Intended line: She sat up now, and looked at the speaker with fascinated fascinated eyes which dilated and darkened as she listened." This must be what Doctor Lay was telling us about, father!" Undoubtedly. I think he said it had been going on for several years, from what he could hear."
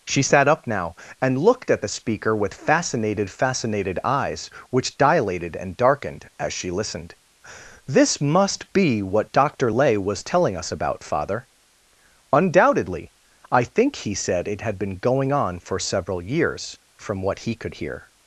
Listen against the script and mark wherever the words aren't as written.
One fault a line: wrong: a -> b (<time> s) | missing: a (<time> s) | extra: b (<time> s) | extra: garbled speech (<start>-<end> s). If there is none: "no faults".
no faults